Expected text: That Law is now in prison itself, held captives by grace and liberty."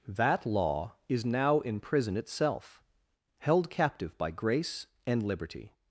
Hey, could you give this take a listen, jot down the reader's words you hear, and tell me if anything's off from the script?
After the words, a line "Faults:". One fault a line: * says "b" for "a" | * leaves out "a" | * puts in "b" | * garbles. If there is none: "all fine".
That Law is now in prison itself, held captive by grace and liberty."
Faults:
* says "captive" for "captives"